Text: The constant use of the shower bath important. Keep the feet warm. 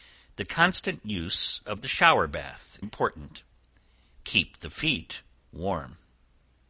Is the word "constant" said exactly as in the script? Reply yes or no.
yes